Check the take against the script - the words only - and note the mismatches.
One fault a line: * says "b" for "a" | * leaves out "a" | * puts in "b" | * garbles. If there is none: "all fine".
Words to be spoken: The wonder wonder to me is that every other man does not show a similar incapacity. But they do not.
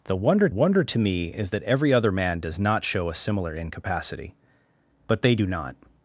all fine